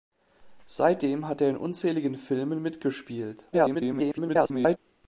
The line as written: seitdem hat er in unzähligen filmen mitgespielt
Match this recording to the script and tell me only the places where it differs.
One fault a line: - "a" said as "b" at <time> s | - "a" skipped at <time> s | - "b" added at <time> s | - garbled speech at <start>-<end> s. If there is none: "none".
- garbled speech at 3.5-4.8 s